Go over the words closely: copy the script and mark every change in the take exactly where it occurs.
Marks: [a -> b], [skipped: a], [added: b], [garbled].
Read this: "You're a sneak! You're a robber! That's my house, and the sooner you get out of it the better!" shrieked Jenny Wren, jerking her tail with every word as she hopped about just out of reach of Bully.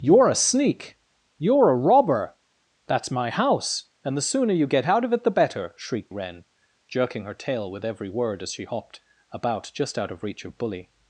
"You're a sneak! You're a robber! That's my house, and the sooner you get out of it the better!" shrieked [skipped: Jenny] Wren, jerking her tail with every word as she hopped about just out of reach of Bully.